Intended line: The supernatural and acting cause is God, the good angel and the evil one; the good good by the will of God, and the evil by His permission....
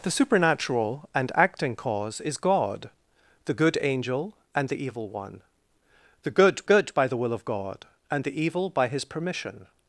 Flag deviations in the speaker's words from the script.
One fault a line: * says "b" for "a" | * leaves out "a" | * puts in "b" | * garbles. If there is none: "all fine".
all fine